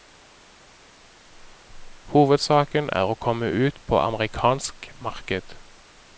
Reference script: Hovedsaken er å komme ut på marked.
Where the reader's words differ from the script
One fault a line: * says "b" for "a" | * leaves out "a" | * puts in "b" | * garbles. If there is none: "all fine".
* puts in "amerikansk"